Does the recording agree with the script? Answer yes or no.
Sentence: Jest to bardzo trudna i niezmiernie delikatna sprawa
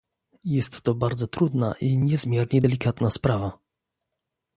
yes